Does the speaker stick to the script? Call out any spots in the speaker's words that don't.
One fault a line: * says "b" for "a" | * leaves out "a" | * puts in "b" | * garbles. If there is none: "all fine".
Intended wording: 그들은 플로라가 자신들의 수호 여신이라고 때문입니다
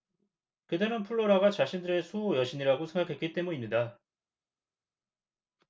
* puts in "생각했기"